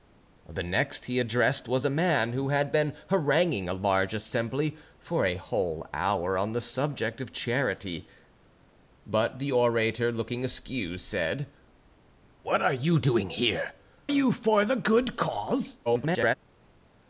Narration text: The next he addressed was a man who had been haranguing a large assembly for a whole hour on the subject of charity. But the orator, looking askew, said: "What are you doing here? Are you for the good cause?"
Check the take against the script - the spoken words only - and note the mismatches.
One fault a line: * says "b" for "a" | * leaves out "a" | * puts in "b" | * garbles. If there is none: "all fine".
* leaves out "Are"
* garbles